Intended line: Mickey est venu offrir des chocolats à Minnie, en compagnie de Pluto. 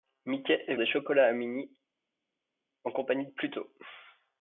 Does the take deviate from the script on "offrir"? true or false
true